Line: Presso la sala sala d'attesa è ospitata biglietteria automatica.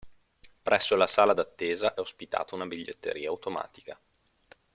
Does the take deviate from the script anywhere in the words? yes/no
yes